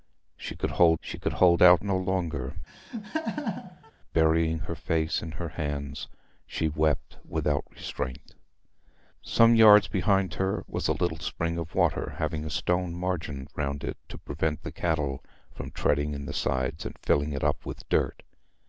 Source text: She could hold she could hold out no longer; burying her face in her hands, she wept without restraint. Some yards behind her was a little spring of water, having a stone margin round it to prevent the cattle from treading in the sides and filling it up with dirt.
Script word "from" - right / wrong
right